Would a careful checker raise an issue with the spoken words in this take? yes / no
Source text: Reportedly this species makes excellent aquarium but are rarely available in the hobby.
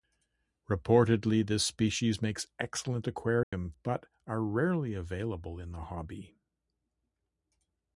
no